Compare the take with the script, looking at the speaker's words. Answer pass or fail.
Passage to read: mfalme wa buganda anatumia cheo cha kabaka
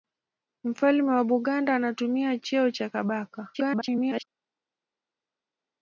fail